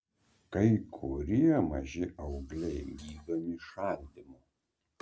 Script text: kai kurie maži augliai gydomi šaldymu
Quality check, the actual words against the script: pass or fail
pass